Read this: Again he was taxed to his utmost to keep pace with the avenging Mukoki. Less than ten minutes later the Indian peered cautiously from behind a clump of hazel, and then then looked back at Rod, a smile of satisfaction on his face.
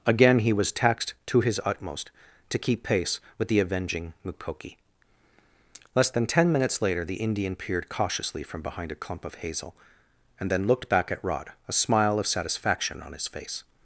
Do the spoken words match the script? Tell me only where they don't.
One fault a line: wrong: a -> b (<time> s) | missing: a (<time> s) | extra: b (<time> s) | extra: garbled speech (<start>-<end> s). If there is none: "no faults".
missing: then (10.7 s)